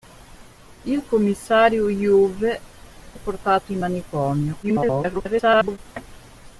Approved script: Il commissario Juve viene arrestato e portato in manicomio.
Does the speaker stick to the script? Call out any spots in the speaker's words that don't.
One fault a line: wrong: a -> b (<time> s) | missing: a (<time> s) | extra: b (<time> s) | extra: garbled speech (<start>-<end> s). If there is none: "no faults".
missing: viene arrestato (2.6 s)
extra: garbled speech (4.6-5.8 s)